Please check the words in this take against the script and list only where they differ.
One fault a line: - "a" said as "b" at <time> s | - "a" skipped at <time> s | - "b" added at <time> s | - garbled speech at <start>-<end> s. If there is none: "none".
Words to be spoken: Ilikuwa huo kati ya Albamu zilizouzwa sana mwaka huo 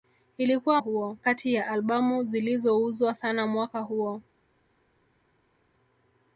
none